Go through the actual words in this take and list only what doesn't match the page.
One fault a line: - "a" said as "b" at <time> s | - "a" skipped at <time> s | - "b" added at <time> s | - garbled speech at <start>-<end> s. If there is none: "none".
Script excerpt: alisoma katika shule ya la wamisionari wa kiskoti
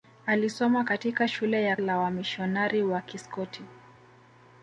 none